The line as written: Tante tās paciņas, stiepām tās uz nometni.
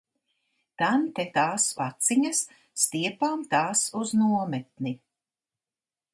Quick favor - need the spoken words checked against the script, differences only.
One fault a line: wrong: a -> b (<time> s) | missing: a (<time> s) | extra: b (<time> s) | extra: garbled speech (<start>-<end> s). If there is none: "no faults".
no faults